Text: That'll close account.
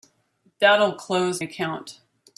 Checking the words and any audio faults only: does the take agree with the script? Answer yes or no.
yes